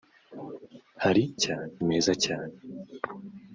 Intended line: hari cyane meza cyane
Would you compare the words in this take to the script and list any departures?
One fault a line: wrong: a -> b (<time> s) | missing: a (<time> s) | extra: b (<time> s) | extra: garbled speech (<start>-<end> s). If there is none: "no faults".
no faults